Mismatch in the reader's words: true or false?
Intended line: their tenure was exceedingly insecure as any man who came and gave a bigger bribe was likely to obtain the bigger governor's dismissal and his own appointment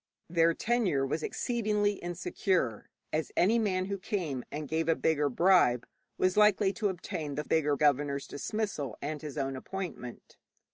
false